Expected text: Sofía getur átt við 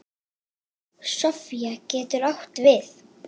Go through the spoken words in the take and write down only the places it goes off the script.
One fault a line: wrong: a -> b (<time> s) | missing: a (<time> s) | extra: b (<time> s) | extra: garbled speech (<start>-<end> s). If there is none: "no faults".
no faults